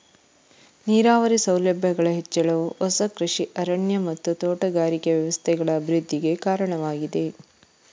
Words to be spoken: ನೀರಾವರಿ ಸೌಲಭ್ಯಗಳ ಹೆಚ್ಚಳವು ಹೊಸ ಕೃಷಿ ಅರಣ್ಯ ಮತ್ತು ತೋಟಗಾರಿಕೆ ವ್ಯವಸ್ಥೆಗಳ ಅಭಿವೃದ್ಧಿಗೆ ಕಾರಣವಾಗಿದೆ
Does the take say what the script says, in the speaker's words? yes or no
yes